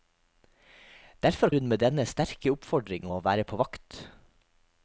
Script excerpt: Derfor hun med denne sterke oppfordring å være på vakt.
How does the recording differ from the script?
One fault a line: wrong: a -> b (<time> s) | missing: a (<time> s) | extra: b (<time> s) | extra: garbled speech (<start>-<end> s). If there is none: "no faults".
no faults